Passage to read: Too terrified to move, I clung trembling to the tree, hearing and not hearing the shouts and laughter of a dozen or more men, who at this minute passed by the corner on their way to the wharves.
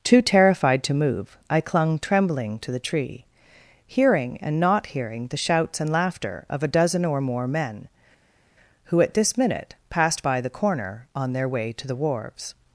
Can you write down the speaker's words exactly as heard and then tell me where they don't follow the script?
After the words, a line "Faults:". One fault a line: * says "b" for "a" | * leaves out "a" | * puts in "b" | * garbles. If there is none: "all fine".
Too terrified to move, I clung trembling to the tree, hearing and not hearing the shouts and laughter of a dozen or more men, who at this minute passed by the corner on their way to the wharves.
Faults:
all fine